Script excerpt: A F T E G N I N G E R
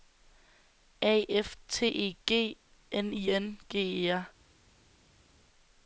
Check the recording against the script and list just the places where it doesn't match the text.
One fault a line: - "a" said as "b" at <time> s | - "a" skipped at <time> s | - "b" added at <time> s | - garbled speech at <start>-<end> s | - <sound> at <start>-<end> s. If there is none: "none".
none